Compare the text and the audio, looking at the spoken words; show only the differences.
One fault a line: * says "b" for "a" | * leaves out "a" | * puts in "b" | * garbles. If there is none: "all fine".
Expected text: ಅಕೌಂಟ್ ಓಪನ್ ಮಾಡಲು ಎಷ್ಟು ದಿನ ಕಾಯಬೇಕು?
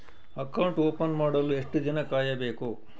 all fine